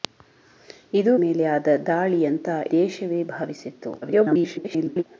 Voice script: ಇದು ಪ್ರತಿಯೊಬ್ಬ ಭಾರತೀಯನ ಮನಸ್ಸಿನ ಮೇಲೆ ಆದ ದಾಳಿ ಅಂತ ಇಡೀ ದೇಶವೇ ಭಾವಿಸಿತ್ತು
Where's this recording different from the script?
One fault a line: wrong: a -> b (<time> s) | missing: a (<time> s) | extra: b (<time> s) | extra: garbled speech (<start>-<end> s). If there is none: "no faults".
missing: ಪ್ರತಿಯೊಬ್ಬ ಭಾರತೀಯನ ಮನಸ್ಸಿನ (1.1 s)
missing: ಇಡೀ (2.5 s)
extra: garbled speech (4.0-5.0 s)